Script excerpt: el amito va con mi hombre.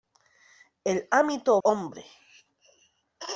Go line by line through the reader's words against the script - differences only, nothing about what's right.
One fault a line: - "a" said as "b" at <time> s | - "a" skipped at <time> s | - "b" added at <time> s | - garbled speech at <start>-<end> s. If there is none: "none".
- "va con mi" skipped at 1.6 s